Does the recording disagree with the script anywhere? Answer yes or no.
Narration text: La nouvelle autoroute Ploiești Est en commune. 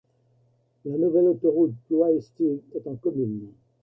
no